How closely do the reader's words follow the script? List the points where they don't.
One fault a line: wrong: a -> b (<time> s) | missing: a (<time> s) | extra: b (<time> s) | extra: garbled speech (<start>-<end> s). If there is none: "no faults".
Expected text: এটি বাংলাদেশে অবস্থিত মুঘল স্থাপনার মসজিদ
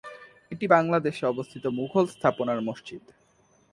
no faults